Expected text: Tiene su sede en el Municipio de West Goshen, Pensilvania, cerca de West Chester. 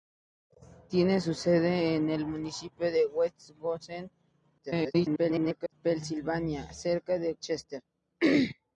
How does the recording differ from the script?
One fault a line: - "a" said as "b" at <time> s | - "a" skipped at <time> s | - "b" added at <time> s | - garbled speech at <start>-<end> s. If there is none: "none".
- garbled speech at 4.6-5.7 s
- "West" skipped at 7.4 s